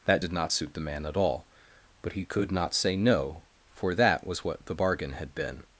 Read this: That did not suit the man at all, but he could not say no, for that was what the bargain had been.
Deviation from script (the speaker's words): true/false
false